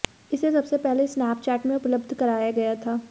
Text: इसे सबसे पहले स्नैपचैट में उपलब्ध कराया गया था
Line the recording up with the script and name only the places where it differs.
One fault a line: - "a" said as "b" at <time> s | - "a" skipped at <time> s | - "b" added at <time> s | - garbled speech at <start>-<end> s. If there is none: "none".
none